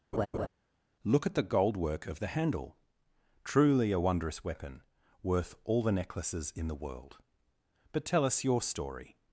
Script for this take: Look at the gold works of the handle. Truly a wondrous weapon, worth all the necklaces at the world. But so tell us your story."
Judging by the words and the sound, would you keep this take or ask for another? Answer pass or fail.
fail